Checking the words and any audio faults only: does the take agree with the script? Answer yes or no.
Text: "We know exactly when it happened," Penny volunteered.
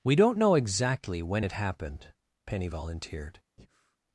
no